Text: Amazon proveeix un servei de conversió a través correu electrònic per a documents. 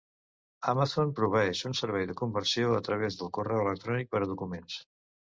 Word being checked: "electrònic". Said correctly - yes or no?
yes